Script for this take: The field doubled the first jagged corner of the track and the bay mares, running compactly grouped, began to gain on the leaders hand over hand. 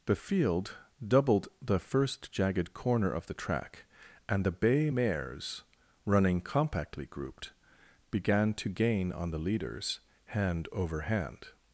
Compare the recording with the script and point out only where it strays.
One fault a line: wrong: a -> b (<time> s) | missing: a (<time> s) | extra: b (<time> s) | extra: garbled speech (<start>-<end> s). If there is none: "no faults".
no faults